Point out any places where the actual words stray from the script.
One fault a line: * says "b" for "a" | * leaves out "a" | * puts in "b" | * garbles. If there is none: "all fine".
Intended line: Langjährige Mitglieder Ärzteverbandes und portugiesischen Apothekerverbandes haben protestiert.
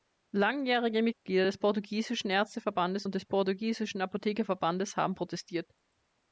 * puts in "des portugiesischen"
* puts in "des"